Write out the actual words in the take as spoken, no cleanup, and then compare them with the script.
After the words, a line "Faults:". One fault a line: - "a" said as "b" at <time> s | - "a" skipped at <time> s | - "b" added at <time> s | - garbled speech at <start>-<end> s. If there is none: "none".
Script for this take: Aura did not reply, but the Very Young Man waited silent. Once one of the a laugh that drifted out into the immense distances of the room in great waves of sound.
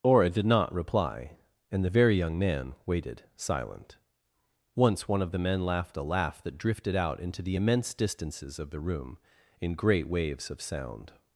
Aura did not reply, and the Very Young Man waited silent. Once one of the men laughed a laugh that drifted out into the immense distances of the room in great waves of sound.
Faults:
- "but" said as "and" at 1.7 s
- "men laughed" added at 5.4 s